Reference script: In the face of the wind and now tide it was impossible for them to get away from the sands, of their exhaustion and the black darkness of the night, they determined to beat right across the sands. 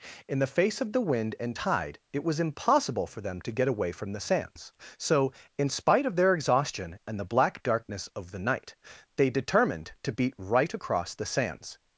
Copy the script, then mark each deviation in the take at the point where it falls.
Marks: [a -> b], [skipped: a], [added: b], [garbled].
In the face of the wind and [skipped: now] tide it was impossible for them to get away from the sands, [added: so in spite] of their exhaustion and the black darkness of the night, they determined to beat right across the sands.